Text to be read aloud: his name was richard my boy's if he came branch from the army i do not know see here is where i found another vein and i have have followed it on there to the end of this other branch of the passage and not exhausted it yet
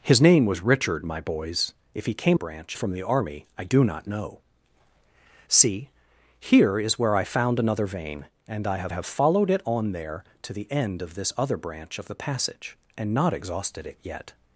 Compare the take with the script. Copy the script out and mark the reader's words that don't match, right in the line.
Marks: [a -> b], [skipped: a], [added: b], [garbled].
his name was richard my boy's if he came branch from the army i do not know see here is where i found another vein and i have have followed it on there to the end of this other branch of the passage and not exhausted it yet